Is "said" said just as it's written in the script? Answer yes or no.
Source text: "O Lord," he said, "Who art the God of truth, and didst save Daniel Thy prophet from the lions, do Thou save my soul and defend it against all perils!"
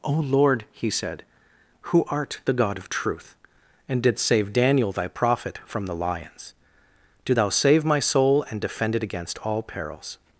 yes